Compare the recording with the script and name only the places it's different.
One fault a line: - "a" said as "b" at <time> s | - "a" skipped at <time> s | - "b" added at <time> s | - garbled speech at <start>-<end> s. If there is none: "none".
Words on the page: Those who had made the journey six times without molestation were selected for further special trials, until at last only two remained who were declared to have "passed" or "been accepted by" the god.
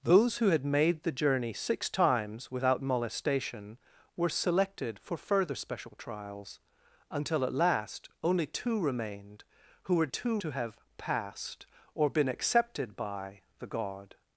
- "declared" said as "two" at 10.1 s